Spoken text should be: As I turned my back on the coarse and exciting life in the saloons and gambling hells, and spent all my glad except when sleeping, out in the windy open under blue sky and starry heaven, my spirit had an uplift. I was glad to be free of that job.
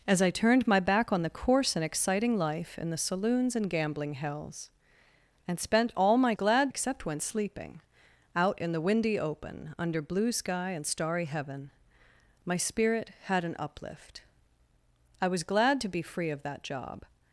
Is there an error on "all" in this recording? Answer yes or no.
no